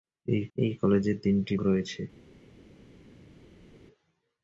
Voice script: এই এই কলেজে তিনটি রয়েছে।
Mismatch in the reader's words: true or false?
false